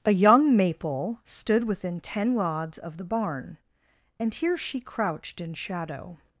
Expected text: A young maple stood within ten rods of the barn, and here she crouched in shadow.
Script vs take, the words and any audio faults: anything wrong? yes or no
no